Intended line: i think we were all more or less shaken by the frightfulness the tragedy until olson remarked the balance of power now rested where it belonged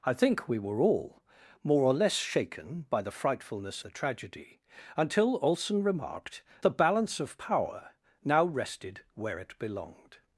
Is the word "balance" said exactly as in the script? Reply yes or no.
yes